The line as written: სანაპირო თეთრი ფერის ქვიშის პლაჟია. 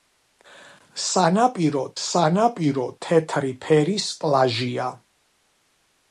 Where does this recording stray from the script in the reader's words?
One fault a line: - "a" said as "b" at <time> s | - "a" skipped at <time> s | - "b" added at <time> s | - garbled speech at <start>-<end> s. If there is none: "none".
- "სანაპირო" added at 2.1 s
- "ქვიშის" skipped at 4.1 s